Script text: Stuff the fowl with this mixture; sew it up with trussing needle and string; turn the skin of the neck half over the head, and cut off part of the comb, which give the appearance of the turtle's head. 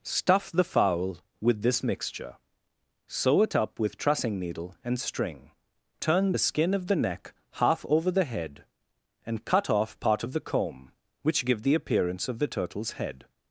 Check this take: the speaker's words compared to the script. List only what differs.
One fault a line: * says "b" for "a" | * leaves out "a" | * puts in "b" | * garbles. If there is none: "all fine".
all fine